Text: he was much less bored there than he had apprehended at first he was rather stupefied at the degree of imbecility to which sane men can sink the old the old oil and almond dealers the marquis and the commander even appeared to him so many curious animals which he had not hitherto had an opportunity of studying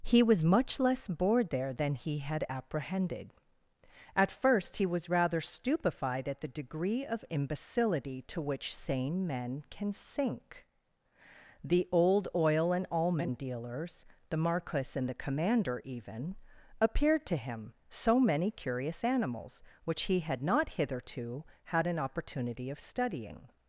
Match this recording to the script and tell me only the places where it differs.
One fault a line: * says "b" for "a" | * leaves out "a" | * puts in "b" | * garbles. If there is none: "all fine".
* leaves out "the old"